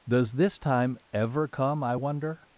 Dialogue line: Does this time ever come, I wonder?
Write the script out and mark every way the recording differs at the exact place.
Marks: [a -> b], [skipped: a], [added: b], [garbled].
Does this time ever come, I wonder?